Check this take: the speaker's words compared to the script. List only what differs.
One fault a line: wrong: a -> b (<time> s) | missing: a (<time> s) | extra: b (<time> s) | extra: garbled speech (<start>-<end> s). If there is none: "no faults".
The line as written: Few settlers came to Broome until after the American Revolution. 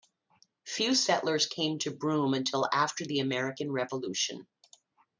no faults